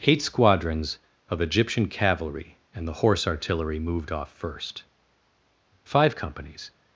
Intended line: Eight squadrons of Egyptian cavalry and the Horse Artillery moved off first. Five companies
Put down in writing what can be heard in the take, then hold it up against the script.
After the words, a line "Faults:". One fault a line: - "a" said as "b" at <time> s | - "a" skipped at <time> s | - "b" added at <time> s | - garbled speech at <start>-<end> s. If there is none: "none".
Eight squadrons of Egyptian cavalry and the Horse Artillery moved off first. Five companies
Faults:
none